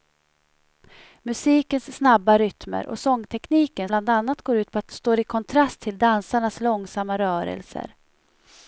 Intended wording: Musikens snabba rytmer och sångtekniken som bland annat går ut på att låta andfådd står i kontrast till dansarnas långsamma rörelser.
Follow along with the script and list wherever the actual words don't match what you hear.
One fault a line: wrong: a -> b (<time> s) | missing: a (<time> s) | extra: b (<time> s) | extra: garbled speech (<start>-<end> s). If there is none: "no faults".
missing: som (3.9 s)
missing: låta andfådd (4.9 s)